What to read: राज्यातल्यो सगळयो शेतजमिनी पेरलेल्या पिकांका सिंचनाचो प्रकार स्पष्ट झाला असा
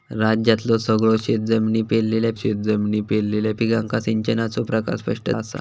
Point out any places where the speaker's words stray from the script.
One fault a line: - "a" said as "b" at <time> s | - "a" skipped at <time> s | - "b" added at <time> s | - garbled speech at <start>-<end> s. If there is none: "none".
- "शेतजमिनी पेरलेल्या" added at 2.3 s
- "झाला" skipped at 5.3 s